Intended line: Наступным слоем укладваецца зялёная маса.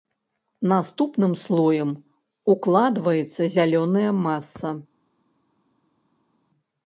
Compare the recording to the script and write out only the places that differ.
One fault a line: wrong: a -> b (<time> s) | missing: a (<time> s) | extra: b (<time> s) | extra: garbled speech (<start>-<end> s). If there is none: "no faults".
no faults